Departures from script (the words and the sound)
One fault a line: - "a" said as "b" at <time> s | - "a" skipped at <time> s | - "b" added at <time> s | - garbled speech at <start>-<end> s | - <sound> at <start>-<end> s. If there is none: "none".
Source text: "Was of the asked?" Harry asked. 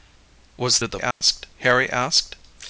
- dropout at 1.1-1.2 s